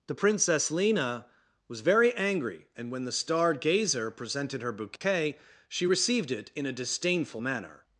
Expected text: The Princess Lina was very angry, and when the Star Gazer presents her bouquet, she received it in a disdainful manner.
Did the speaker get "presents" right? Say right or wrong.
wrong